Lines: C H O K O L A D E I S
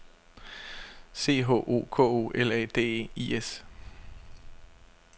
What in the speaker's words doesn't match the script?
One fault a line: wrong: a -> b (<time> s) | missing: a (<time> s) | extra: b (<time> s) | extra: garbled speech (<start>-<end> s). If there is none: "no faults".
no faults